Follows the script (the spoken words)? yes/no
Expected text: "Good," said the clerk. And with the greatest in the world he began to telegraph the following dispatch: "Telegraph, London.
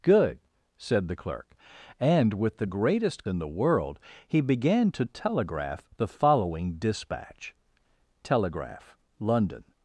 yes